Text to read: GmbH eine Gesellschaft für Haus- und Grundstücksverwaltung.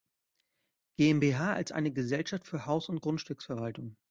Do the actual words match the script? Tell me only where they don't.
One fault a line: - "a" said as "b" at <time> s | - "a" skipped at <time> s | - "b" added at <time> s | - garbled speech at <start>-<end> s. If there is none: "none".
- "als" added at 1.5 s